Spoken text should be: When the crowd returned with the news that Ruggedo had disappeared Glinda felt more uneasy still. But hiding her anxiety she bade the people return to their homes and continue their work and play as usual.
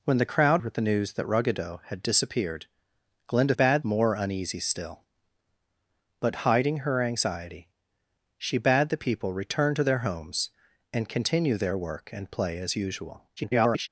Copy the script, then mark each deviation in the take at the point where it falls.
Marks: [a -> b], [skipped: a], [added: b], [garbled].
When the crowd [skipped: returned] with the news that Ruggedo had disappeared Glinda [felt -> bade] more uneasy still. But hiding her anxiety she bade the people return to their homes and continue their work and play as usual. [garbled]